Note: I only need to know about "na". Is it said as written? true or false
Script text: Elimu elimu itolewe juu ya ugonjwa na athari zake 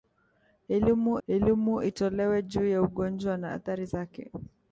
true